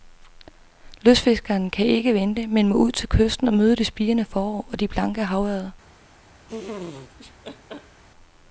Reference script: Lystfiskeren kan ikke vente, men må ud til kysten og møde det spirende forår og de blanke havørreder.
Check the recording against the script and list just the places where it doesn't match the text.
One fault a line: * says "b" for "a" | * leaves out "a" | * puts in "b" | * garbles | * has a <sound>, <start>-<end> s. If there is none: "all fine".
* has a laugh, 6.5-8.0 s